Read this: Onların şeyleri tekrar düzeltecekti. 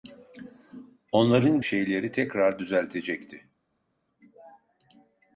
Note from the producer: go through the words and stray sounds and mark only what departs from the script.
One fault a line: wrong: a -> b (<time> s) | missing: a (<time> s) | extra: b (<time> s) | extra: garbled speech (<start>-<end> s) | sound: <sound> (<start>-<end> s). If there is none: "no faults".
no faults